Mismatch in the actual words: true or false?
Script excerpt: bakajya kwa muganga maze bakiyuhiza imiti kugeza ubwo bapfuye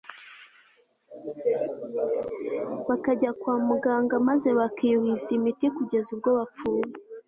false